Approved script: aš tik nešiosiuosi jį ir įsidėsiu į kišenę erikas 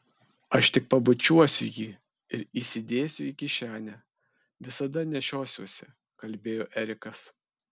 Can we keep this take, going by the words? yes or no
no